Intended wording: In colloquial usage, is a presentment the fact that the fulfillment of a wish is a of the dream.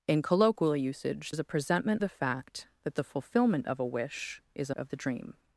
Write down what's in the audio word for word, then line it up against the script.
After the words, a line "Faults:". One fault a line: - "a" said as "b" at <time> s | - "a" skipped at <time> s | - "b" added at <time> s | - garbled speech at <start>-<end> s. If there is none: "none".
In colloquial usage, is a presentment the fact that the fulfillment of a wish is a of the dream.
Faults:
none